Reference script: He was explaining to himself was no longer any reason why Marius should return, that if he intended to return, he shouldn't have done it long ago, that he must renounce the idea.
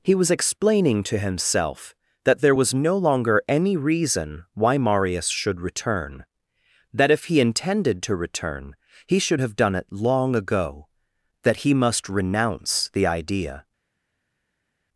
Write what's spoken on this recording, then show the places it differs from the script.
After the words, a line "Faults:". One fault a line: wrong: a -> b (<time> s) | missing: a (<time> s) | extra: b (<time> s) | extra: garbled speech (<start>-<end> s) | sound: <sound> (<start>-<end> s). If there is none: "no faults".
He was explaining to himself that there was no longer any reason why Marius should return, that if he intended to return, he should have done it long ago, that he must renounce the idea.
Faults:
extra: that there (2.2 s)
wrong: shouldn't -> should (9.2 s)